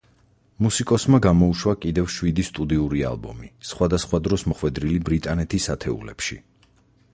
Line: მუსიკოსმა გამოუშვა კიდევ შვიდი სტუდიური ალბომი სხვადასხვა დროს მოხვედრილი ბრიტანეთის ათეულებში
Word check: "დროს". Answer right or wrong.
right